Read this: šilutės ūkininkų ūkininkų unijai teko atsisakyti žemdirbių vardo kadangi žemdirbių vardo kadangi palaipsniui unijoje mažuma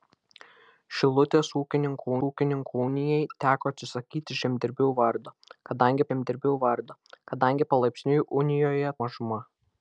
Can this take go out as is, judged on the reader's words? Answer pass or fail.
pass